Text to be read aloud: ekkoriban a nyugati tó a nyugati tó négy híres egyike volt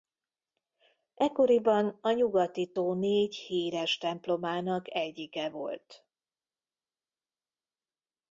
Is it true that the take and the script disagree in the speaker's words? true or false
true